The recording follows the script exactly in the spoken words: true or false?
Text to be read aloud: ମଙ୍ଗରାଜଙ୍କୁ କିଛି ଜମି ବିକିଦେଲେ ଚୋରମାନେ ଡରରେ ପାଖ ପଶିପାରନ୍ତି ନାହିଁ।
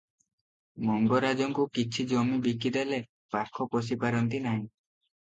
false